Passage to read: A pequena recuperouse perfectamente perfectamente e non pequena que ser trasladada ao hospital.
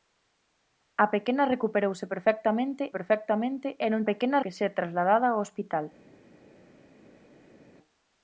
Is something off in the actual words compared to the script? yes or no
no